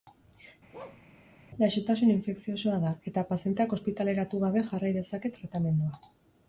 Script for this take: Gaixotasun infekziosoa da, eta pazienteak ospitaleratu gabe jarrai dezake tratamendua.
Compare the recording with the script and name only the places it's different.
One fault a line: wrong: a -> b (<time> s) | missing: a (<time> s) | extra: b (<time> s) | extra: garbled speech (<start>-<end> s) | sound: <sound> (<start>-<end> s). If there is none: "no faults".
sound: bark (0.7-1.0 s)